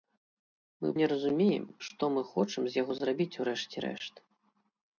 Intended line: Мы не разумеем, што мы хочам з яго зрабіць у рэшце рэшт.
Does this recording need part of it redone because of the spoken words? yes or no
no